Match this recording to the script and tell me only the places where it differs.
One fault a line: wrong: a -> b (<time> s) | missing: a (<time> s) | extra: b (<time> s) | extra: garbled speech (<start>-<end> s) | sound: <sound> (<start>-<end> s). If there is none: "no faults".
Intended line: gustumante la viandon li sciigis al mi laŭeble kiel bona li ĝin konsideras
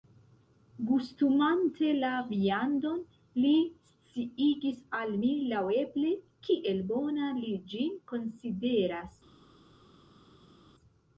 no faults